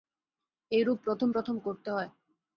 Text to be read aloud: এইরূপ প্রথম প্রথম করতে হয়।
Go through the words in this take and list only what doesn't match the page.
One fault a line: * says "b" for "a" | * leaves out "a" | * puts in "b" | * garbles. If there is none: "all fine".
all fine